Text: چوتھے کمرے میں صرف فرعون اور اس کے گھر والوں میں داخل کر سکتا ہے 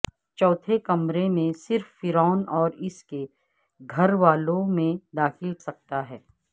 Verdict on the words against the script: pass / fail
fail